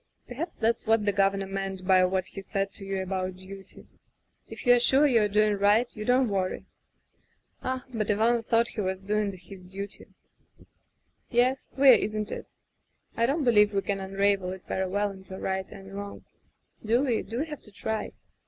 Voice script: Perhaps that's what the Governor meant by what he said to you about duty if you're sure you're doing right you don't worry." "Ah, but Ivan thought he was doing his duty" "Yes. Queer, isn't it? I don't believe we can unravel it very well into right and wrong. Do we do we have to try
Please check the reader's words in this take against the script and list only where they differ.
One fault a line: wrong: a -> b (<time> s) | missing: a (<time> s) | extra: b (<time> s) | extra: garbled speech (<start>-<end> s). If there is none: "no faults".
no faults